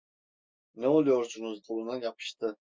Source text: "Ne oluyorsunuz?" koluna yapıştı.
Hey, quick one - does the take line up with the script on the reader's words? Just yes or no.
yes